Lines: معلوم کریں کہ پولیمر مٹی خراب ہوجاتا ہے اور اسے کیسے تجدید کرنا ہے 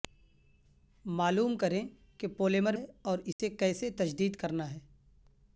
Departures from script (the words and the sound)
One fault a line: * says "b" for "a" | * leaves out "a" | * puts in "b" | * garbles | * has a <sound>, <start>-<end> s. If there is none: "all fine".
* leaves out "مٹی خراب ہوجاتا"
* has a dropout, 3.3-3.4 s